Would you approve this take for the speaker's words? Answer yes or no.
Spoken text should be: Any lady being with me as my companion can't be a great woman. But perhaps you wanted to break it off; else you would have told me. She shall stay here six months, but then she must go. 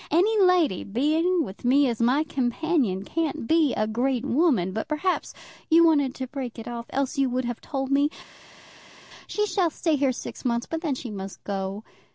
yes